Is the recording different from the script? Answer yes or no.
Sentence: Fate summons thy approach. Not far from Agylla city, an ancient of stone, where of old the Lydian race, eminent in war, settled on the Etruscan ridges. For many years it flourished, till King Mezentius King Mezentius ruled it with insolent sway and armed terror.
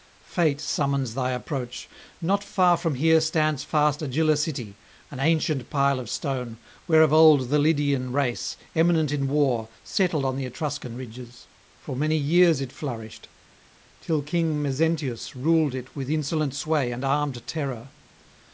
yes